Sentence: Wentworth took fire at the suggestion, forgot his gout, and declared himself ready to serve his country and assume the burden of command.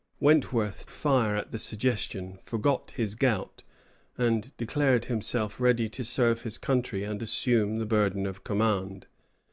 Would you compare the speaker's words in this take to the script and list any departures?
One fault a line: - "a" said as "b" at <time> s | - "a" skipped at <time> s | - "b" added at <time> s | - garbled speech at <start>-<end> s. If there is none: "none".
- "took" skipped at 0.9 s